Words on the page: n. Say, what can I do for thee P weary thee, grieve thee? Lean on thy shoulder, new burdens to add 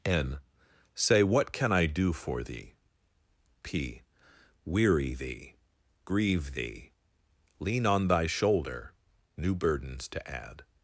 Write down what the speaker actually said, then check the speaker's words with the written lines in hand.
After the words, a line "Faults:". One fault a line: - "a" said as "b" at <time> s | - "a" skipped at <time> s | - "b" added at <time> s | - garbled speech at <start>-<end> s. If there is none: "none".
n. Say, what can I do for thee P weary thee, grieve thee? Lean on thy shoulder, new burdens to add
Faults:
none